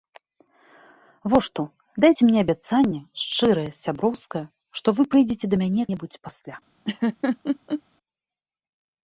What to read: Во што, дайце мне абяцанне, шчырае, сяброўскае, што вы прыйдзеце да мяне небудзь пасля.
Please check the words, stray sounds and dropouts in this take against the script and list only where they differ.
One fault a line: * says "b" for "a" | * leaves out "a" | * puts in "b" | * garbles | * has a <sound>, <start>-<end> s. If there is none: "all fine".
* has a laugh, 6.8-7.8 s